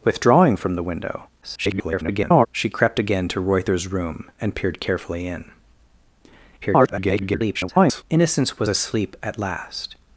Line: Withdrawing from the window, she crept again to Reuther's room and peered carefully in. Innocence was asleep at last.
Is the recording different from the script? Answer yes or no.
yes